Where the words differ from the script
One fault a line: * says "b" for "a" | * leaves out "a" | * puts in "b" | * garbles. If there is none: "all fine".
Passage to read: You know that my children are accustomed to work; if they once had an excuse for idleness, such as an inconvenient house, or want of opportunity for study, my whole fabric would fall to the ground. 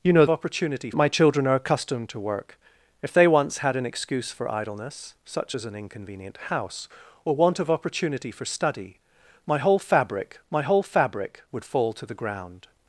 * says "opportunity" for "that"
* puts in "my whole fabric"